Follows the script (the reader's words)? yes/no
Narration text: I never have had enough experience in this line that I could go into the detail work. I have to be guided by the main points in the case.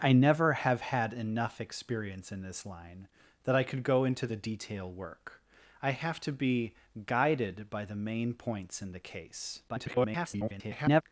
no